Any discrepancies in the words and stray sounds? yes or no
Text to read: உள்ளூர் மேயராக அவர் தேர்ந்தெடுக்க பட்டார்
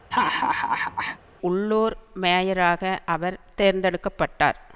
yes